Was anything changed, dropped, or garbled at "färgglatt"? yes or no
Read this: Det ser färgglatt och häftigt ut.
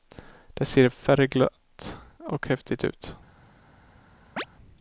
no